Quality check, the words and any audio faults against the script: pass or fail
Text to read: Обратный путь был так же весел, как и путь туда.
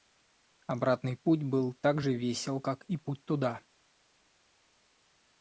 pass